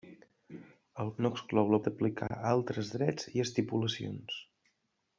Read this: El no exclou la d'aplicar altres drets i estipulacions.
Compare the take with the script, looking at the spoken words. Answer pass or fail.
pass